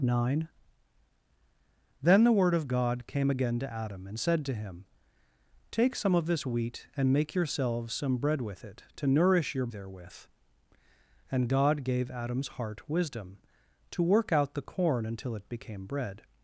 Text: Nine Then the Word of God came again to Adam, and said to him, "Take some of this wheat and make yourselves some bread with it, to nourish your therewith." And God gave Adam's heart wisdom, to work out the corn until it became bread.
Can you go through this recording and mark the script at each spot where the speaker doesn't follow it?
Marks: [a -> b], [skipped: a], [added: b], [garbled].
Nine Then the Word of God came again to Adam, and said to him, "Take some of this wheat and make yourselves some bread with it, to nourish your therewith." And God gave Adam's heart wisdom, to work out the corn until it became bread.